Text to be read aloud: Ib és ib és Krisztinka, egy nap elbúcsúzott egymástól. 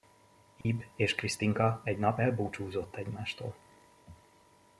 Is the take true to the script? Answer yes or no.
no